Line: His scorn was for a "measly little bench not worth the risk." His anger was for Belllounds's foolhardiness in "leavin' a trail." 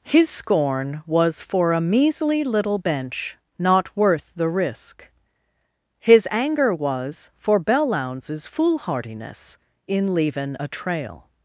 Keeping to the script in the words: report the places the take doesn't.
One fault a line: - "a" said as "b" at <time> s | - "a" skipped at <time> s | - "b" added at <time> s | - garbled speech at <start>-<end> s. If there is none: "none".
none